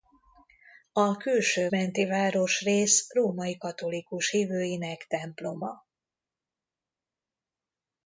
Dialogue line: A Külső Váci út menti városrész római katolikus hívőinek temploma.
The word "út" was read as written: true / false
false